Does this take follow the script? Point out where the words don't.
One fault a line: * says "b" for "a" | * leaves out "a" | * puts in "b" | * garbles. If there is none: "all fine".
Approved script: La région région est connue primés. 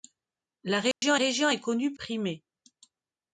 all fine